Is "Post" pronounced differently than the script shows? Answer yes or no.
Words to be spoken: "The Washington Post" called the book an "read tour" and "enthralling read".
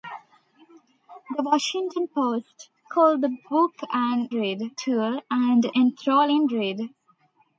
no